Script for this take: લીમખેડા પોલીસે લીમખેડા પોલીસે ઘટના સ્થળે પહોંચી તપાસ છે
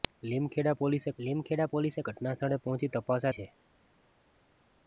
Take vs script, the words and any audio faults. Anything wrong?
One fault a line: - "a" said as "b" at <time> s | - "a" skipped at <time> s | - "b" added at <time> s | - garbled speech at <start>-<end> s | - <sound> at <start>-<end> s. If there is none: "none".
none